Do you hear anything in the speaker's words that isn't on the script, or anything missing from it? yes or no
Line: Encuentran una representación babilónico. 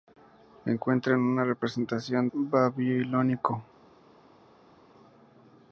no